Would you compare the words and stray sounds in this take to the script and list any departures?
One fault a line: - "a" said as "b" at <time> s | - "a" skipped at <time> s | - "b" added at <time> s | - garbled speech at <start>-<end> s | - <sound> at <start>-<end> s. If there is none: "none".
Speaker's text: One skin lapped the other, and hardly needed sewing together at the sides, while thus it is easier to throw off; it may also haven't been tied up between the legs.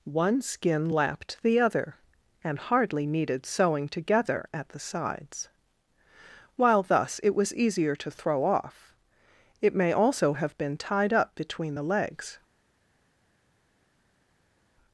- "is" said as "was" at 7.3 s
- "haven't" said as "have" at 10.3 s